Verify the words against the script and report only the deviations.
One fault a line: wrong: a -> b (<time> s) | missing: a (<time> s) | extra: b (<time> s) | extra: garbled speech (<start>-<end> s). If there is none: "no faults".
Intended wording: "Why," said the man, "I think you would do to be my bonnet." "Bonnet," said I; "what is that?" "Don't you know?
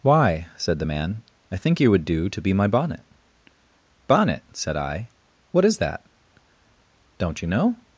no faults